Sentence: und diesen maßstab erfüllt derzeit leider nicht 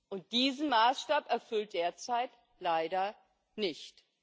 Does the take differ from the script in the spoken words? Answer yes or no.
no